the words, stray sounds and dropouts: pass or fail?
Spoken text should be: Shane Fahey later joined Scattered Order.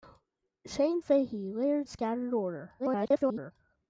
fail